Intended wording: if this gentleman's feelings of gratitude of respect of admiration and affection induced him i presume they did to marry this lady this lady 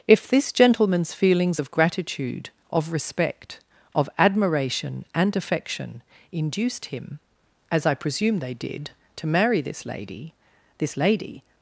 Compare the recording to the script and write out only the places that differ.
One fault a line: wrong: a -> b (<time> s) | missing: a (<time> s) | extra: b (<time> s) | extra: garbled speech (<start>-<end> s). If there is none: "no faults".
extra: as (7.7 s)